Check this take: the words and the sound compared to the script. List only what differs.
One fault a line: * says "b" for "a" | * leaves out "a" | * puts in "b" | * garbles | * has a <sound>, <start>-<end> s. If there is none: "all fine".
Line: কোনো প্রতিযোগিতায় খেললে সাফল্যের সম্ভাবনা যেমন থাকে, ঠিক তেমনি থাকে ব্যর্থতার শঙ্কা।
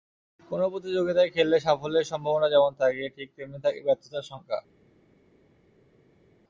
all fine